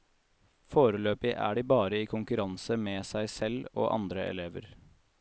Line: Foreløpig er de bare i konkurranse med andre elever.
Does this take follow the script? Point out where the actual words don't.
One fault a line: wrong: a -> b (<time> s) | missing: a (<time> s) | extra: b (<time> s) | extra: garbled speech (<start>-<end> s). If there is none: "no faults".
extra: seg selv og (3.1 s)